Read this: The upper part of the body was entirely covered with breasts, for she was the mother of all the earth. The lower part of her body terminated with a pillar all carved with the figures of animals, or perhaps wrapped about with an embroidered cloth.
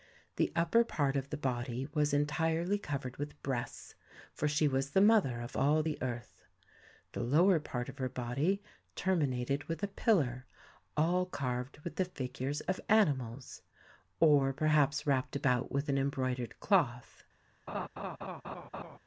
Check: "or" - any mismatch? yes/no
no